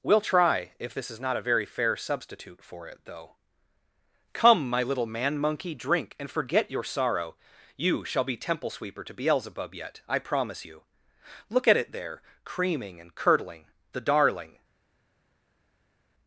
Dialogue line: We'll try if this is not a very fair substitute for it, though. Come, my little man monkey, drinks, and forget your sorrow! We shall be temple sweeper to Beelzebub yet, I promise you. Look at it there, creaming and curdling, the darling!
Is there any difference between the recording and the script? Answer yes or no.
yes